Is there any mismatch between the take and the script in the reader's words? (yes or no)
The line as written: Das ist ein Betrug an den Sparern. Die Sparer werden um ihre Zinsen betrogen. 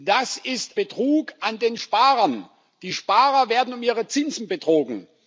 yes